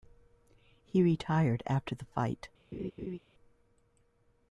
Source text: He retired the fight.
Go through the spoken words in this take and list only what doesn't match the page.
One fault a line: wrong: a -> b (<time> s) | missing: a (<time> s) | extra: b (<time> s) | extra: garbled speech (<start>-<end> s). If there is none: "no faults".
extra: after (1.7 s)